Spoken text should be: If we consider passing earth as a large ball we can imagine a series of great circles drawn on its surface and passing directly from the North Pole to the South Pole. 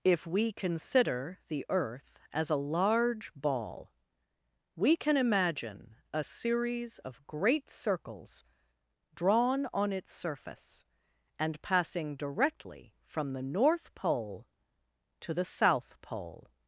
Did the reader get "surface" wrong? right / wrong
right